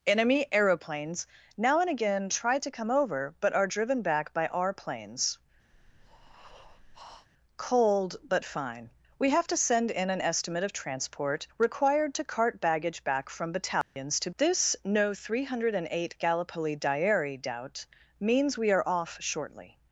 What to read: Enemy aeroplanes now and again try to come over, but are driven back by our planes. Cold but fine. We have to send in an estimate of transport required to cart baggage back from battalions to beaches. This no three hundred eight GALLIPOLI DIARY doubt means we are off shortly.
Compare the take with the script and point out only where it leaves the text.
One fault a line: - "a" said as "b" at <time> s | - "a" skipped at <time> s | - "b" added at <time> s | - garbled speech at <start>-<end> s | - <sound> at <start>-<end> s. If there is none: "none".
- breath at 5.7-7.3 s
- dropout at 13.8-14.0 s
- "beaches" skipped at 14.3 s